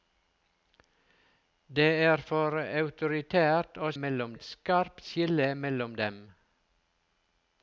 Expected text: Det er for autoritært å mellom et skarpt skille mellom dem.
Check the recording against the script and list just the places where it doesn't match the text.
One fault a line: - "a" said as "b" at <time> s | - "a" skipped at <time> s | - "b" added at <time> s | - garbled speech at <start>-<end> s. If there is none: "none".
none